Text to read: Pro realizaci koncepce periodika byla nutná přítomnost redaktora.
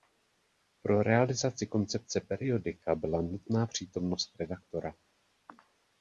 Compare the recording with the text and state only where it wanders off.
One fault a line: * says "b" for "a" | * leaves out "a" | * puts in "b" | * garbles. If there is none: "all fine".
all fine